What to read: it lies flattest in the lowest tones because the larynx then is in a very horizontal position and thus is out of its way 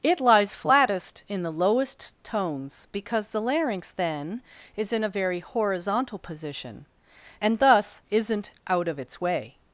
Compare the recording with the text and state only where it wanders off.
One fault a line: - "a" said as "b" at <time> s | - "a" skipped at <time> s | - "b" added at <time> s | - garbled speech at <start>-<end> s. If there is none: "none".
- "is" said as "isn't" at 8.1 s